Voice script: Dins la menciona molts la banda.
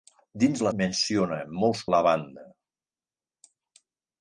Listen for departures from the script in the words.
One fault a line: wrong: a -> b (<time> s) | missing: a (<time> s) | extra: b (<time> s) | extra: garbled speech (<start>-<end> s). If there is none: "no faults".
no faults